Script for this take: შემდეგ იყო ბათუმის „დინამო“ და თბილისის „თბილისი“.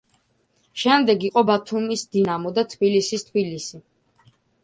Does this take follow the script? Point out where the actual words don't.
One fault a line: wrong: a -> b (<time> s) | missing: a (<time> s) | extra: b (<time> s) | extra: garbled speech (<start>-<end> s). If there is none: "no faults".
no faults